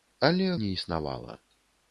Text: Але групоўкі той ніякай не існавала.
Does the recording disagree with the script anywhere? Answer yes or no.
yes